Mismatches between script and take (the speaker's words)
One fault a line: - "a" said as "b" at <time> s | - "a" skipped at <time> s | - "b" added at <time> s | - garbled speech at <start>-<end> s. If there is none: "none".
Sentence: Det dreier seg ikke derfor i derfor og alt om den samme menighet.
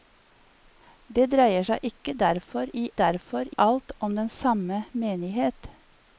none